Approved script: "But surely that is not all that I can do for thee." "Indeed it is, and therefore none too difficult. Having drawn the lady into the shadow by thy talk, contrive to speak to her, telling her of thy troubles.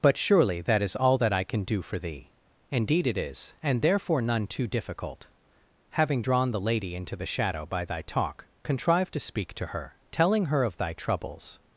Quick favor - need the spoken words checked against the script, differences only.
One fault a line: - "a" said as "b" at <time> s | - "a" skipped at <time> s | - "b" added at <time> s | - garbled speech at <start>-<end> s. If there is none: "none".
- "not" skipped at 0.9 s